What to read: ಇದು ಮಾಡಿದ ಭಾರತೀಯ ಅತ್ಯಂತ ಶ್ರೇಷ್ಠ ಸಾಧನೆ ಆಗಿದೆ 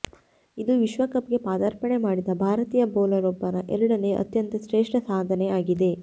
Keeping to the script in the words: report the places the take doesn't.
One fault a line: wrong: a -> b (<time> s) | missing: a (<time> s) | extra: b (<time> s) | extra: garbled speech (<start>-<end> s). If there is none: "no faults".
extra: ವಿಶ್ವಕಪ್ಗೆ ಪದಾರ್ಪಣೆ (0.8 s)
extra: ಬೌಲರ್ ಒಬ್ಬನ ಎರಡನೇ (3.0 s)